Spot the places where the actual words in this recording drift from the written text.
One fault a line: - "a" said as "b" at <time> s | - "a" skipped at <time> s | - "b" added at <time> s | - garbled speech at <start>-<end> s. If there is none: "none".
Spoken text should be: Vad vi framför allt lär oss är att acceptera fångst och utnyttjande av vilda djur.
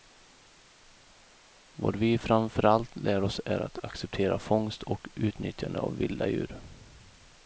none